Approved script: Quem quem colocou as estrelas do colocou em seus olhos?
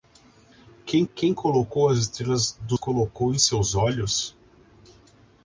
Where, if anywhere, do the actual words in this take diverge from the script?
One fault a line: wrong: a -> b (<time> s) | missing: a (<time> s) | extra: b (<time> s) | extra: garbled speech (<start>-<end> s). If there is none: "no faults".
no faults